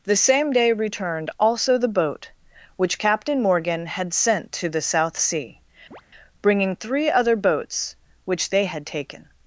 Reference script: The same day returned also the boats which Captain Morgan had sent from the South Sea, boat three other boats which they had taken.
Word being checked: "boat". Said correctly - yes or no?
no